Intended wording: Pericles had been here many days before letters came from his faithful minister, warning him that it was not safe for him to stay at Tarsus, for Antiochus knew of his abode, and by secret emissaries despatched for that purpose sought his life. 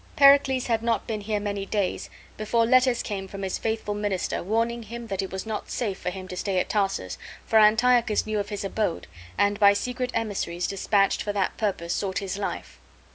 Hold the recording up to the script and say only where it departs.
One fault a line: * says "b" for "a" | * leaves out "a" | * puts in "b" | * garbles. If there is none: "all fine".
* puts in "not"